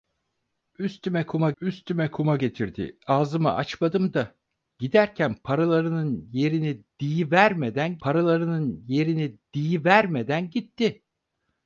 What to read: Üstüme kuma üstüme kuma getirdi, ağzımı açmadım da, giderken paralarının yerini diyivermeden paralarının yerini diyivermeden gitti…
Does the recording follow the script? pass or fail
pass